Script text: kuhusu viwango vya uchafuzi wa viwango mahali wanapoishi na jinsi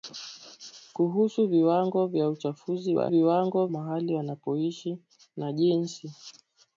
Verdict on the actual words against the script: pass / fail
pass